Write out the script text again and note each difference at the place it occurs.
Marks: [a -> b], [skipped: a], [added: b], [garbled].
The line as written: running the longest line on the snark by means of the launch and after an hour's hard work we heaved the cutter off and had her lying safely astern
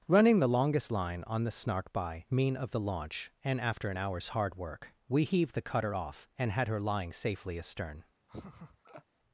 running the longest line on the snark by [means -> mean] of the launch and after an hour's hard work we heaved the cutter off and had her lying safely astern